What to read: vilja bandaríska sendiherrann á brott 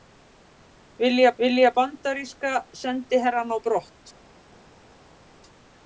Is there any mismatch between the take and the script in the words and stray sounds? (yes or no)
yes